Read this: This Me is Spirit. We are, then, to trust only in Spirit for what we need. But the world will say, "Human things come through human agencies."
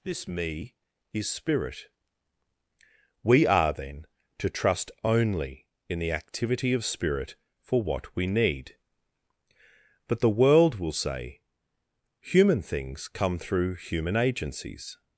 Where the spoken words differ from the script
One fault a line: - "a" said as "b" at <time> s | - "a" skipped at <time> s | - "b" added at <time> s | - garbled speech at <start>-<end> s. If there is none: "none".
- "the activity of" added at 6.0 s